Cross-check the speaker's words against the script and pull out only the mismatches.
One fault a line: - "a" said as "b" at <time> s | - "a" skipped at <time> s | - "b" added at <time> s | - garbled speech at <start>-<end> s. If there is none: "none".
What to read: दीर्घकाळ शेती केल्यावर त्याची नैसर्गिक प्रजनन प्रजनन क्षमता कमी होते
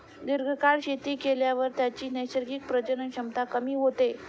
- "प्रजनन" skipped at 3.1 s